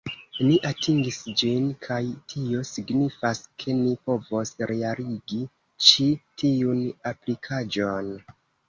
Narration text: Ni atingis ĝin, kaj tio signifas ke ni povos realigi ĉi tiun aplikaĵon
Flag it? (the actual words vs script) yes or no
no